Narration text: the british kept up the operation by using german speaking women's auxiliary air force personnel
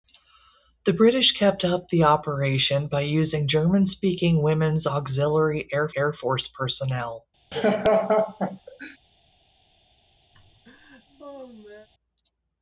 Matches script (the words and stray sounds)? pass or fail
fail